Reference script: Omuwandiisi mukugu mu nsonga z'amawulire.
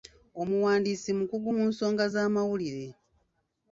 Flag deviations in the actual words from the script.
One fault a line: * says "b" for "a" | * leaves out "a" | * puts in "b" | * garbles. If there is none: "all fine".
all fine